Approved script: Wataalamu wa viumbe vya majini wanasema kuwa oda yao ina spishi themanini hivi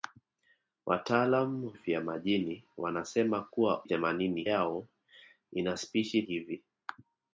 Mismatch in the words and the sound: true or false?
true